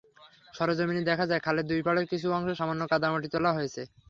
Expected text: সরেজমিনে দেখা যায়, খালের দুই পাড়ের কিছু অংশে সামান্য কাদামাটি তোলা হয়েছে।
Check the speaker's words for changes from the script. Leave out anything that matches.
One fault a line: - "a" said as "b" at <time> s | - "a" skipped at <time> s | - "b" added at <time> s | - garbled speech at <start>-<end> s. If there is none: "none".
none